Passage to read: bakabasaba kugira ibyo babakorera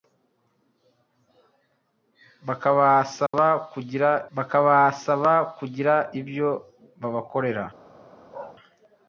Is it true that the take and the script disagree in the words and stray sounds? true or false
true